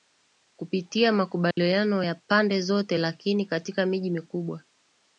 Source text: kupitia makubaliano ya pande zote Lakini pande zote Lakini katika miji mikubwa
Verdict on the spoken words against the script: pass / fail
fail